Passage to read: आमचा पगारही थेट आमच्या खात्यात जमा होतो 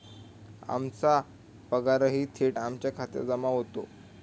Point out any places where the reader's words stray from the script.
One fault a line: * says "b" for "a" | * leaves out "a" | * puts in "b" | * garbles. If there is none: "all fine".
all fine